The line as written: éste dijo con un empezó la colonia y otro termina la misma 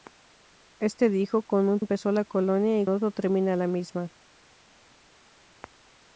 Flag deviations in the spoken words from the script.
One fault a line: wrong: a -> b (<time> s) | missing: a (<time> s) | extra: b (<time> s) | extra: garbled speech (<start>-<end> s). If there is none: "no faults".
no faults